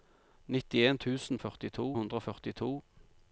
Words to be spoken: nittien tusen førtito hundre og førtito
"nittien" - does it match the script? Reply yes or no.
yes